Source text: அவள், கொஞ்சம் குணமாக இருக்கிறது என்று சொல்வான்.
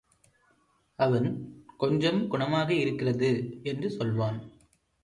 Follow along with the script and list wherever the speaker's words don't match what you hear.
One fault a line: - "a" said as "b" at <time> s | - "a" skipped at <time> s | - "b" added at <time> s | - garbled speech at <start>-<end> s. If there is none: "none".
- "அவள்" said as "அவன்" at 1.0 s